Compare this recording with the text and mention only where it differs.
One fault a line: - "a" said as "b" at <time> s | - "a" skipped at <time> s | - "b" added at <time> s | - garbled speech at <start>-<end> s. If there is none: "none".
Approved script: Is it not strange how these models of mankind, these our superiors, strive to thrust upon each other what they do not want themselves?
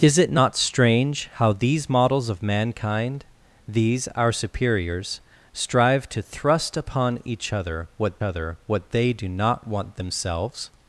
- "other what" added at 8.2 s